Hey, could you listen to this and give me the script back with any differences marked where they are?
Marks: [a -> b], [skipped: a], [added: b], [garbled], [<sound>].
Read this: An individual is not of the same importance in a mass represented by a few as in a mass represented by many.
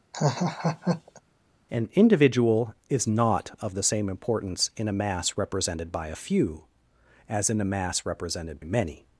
[laugh] An individual is not of the same importance in a mass represented by a few as in a mass represented [skipped: by] many.